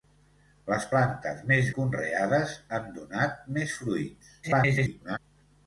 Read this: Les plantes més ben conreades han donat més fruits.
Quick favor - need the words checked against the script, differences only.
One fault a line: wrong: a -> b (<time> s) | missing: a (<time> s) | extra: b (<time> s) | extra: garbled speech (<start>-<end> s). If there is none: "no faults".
missing: ben (1.7 s)
extra: garbled speech (4.4-5.2 s)